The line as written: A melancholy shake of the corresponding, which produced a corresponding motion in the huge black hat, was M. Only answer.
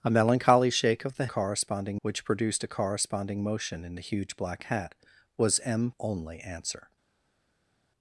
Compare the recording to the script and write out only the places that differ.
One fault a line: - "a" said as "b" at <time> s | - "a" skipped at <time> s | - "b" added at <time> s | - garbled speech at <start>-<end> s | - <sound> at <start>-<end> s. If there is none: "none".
none